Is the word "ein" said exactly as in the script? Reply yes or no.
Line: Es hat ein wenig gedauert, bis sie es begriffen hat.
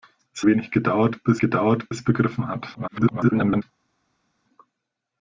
no